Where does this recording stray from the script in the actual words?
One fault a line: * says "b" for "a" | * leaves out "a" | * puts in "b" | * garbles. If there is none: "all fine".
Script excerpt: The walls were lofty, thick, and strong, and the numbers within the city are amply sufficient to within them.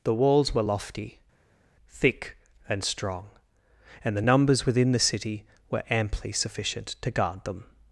* says "were" for "are"
* says "guard" for "within"